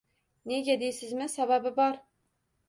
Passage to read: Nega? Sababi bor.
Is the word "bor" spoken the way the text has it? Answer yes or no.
yes